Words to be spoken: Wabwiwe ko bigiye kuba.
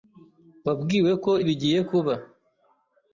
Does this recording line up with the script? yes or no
yes